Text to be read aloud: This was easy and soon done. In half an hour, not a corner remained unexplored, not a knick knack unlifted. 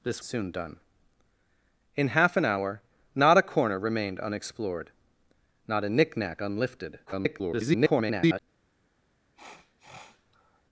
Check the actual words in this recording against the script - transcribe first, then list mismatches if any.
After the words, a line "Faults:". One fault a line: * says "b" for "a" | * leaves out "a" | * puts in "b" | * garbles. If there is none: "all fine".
This soon done. In half an hour, not a corner remained unexplored, not a knick knack unlifted. [garbled]
Faults:
* leaves out "was easy and"
* garbles